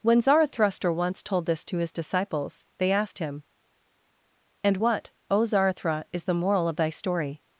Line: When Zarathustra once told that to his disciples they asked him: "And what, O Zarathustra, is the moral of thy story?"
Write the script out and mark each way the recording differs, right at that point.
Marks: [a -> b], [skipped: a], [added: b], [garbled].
When Zarathustra once told [that -> this] to his disciples they asked him: "And what, O Zarathustra, is the moral of thy story?"